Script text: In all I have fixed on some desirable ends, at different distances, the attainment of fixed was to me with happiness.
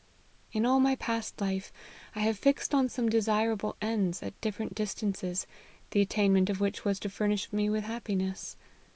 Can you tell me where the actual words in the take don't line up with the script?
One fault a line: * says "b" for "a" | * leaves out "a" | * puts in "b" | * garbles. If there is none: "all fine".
* puts in "my past life"
* says "which" for "fixed"
* puts in "furnish"